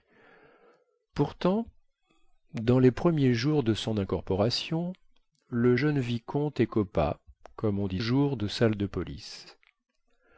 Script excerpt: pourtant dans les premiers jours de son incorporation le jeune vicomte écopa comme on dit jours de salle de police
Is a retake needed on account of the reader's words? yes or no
no